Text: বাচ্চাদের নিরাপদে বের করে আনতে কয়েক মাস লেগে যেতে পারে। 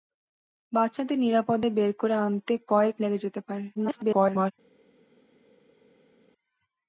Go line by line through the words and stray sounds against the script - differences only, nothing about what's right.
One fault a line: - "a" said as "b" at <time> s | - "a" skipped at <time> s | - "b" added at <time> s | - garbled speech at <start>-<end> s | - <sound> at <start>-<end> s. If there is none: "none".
- "মাস" skipped at 3.0 s
- garbled speech at 3.7-4.5 s